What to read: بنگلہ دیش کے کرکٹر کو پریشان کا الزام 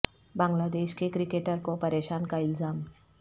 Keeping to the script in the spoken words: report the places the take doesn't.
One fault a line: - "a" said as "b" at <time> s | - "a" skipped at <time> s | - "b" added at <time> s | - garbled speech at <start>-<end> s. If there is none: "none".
none